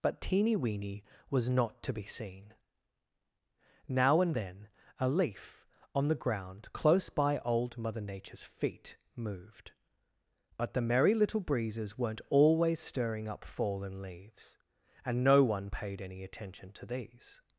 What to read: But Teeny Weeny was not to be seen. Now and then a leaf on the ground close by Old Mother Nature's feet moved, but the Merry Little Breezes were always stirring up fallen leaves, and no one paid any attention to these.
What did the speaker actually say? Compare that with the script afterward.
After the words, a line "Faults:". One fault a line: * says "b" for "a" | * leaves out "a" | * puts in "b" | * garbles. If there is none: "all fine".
But Teeny Weeny was not to be seen. Now and then a leaf on the ground close by Old Mother Nature's feet moved, but the Merry Little Breezes weren't always stirring up fallen leaves, and no one paid any attention to these.
Faults:
* says "weren't" for "were"